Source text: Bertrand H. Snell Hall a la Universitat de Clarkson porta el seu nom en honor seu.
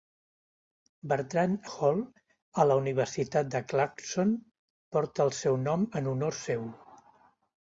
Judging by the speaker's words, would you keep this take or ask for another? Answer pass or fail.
fail